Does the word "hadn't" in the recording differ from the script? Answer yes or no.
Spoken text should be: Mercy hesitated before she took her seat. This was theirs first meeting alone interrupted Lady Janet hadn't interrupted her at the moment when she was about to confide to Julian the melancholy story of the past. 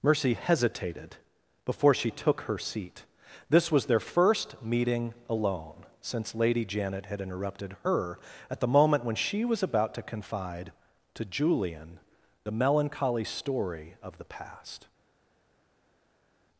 yes